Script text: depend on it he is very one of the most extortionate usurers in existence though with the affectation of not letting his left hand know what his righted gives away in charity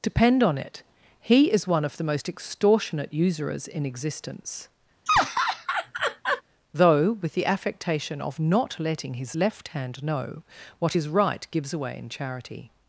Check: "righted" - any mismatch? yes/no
yes